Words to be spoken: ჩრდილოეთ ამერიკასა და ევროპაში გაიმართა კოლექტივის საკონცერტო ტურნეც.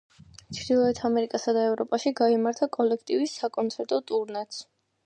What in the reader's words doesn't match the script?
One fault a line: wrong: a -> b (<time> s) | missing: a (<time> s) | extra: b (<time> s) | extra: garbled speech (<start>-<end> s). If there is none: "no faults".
no faults